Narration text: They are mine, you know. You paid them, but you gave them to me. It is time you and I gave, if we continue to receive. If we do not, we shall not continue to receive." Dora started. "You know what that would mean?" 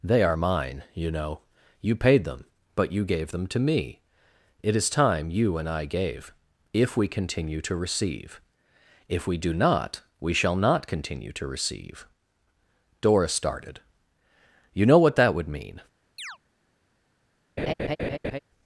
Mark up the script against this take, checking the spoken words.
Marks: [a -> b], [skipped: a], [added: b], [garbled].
They are mine, you know. You paid them, but you gave them to me. It is time you and I gave, if we continue to receive. If we do not, we shall not continue to receive." Dora started. "You know what that would mean?"